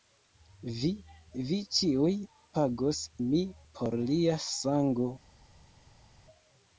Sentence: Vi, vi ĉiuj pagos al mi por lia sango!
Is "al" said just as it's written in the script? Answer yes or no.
no